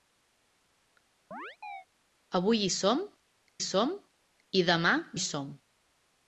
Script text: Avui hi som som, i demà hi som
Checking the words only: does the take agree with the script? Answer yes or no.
yes